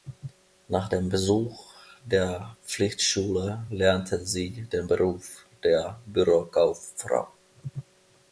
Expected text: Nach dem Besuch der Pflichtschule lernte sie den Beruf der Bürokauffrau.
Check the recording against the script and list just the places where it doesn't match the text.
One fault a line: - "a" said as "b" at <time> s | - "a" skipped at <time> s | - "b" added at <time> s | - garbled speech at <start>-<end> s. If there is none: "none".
none